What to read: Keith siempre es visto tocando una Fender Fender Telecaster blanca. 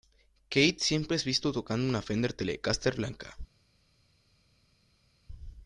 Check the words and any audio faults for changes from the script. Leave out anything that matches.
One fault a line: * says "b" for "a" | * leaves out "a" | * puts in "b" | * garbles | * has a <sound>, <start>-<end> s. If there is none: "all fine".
* leaves out "Fender"